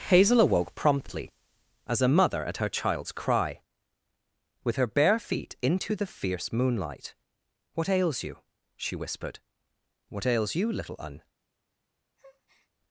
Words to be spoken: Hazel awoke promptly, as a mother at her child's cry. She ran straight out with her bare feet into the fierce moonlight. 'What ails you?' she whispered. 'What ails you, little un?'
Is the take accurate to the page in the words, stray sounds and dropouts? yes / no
no